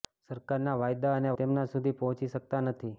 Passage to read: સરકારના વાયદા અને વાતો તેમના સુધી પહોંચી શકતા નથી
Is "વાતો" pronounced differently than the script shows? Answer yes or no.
yes